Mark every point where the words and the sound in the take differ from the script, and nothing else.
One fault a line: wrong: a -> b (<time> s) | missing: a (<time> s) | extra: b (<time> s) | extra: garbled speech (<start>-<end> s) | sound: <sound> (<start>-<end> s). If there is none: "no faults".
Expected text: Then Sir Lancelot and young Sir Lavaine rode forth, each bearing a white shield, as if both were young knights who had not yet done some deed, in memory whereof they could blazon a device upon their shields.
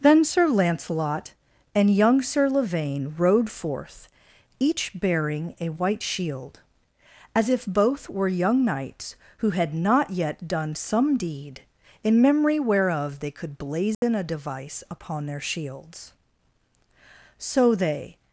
sound: dropout (13.9-14.0 s)
extra: So they (17.4 s)